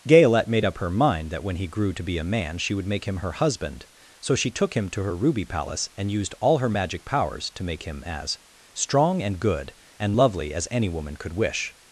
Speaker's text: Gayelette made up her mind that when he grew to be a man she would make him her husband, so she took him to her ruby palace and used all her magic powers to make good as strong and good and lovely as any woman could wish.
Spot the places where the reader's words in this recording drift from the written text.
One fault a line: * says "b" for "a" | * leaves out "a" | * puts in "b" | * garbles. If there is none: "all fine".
* says "him" for "good"